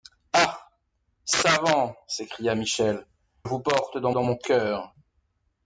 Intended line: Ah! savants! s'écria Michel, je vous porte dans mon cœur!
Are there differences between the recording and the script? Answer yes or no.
yes